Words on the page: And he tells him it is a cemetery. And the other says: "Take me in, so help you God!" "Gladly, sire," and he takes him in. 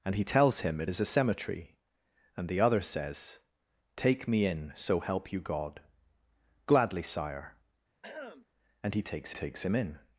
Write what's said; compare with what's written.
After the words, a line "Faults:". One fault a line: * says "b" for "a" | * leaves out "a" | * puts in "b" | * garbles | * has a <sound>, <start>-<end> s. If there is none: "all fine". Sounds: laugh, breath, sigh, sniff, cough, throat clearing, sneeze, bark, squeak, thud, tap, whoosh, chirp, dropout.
And he tells him it is a cemetery. And the other says: "Take me in, so help you God!" "Gladly, sire," and he takes takes him in.
Faults:
* has a throat clearing, 8.0-8.5 s
* puts in "takes"